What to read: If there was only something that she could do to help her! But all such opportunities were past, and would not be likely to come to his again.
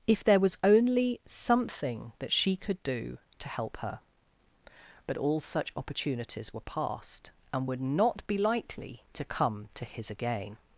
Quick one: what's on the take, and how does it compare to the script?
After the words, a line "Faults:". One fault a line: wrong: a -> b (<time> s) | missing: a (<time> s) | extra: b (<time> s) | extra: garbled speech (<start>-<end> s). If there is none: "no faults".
If there was only something that she could do to help her! But all such opportunities were past, and would not be likely to come to his again.
Faults:
no faults